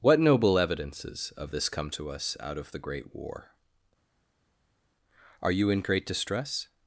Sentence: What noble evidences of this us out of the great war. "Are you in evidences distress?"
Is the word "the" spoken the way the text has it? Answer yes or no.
yes